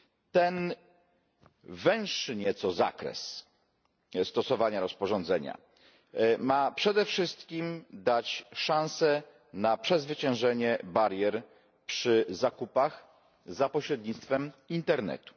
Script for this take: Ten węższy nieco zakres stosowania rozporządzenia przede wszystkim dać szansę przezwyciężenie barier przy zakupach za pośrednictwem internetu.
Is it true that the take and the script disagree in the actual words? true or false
true